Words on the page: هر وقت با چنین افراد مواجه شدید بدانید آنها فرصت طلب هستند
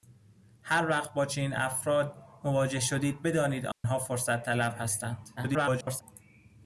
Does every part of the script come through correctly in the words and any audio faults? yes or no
no